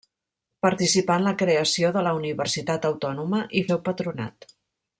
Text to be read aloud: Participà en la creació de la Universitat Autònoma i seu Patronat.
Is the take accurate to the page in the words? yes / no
yes